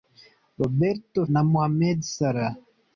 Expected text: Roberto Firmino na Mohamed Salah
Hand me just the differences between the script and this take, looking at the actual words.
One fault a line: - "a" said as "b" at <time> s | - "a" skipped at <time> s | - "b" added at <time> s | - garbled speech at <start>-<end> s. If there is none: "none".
- "Firmino" skipped at 1.2 s